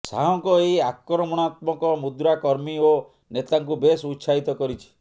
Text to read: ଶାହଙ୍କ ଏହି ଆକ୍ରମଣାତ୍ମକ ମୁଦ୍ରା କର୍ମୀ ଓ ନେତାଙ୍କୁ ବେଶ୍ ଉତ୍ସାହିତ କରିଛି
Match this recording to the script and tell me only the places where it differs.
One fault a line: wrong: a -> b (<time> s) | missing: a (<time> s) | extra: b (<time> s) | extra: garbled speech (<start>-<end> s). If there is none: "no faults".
no faults